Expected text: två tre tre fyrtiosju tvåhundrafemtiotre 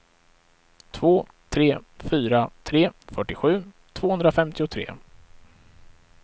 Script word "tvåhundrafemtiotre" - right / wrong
right